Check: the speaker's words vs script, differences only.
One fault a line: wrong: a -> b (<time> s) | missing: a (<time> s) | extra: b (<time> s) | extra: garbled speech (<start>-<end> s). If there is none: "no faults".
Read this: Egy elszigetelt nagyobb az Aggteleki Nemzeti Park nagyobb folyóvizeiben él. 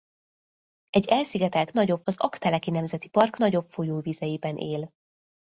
no faults